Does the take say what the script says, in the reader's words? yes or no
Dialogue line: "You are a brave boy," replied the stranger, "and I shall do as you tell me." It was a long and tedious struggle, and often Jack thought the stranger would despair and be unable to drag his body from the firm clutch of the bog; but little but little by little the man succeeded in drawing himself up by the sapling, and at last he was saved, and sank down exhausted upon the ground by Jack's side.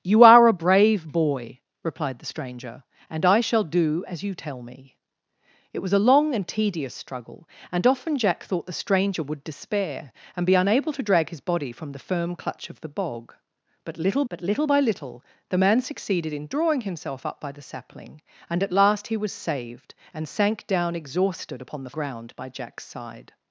yes